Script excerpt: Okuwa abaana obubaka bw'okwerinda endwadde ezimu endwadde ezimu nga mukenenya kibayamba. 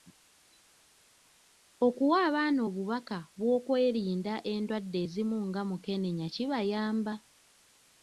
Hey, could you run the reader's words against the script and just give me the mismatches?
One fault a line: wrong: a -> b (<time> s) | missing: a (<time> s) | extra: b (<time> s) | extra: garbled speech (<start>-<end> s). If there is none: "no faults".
missing: endwadde ezimu (5.4 s)